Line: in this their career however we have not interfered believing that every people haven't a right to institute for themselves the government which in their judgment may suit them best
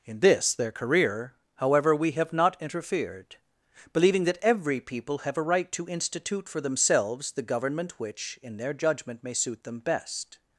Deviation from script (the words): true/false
true